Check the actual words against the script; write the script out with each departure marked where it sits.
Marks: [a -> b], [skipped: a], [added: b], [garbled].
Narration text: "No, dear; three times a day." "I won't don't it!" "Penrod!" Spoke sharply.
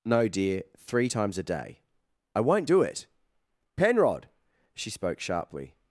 "No, dear; three times a day." "I won't [don't -> do] it!" "Penrod!" [added: She] Spoke sharply.